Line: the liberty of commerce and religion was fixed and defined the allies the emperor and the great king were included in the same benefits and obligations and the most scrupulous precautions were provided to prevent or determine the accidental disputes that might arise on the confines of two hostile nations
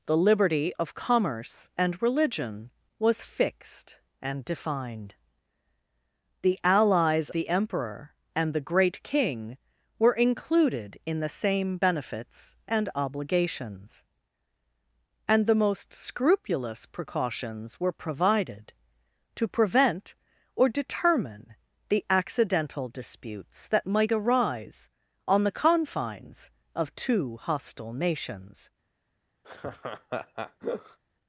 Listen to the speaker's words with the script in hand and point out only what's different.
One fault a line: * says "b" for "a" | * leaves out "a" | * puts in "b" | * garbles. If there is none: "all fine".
all fine